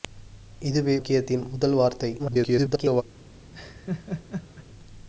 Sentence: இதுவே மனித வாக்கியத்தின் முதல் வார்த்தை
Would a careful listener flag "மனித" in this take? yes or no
yes